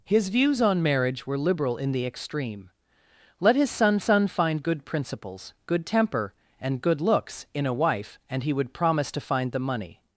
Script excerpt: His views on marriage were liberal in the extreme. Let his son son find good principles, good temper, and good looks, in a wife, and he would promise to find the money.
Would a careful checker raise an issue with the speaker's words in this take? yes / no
no